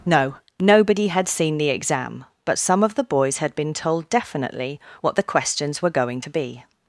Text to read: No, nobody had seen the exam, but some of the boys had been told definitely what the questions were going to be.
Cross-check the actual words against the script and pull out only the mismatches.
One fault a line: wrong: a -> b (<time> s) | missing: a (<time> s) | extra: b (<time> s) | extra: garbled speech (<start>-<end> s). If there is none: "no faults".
no faults